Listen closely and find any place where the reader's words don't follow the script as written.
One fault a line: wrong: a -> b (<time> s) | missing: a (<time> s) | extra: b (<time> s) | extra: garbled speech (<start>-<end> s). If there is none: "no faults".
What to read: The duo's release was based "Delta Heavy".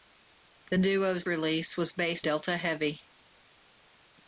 no faults